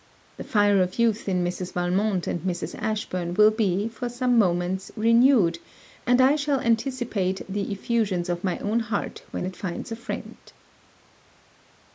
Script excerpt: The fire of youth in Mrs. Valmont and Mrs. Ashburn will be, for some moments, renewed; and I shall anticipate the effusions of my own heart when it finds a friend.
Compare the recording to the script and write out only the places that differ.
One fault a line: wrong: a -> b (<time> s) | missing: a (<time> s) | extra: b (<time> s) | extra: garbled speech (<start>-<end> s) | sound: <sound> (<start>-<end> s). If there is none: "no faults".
no faults